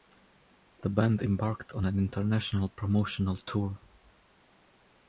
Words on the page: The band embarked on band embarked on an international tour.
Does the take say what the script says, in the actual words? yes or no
no